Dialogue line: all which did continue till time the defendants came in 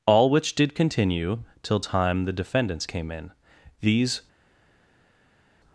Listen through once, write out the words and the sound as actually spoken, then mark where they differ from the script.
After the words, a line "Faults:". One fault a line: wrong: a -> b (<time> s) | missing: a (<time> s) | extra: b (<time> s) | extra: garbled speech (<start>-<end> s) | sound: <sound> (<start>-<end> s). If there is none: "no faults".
all which did continue till time the defendants came in these
Faults:
extra: these (3.8 s)